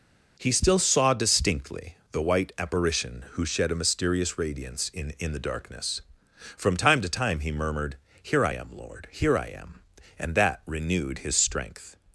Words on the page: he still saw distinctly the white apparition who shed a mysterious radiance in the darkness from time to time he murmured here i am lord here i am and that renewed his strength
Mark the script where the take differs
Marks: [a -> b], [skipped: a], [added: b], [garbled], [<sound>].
he still saw distinctly the white apparition who shed a mysterious radiance in [added: in] the darkness from time to time he murmured here i am lord here i am and that renewed his strength